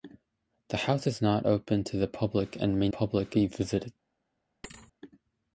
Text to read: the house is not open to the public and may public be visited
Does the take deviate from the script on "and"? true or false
false